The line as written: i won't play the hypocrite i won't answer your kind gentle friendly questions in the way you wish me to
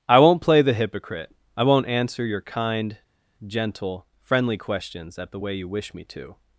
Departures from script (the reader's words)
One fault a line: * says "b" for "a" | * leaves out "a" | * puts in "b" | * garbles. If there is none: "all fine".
* says "at" for "in"